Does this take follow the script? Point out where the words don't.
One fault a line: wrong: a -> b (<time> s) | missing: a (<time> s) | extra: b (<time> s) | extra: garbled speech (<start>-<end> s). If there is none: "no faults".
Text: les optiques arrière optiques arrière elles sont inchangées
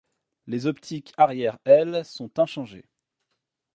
missing: optiques arrière (1.6 s)